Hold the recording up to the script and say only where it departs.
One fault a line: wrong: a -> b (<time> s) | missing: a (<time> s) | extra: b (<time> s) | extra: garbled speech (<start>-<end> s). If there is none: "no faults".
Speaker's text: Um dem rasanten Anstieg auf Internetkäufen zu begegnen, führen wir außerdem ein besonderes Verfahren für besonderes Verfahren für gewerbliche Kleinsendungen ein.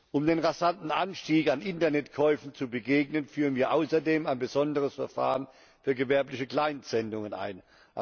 wrong: auf -> an (1.5 s)
missing: besonderes Verfahren für (5.9 s)